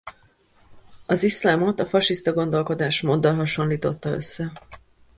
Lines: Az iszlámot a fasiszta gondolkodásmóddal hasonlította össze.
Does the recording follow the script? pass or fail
pass